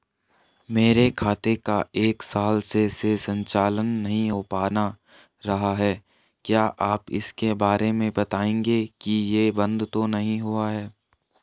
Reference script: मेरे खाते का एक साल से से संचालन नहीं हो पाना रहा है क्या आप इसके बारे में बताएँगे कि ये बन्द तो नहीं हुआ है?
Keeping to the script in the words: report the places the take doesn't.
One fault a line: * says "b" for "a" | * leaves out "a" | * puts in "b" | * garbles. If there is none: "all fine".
all fine